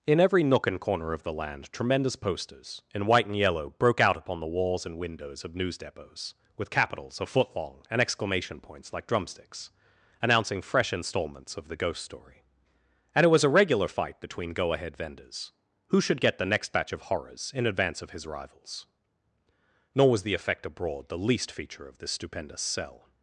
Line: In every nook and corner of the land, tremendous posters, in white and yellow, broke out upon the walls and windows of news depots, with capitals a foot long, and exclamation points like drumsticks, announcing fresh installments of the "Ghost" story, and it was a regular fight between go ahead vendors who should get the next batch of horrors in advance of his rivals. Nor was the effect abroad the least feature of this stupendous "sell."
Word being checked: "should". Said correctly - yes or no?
yes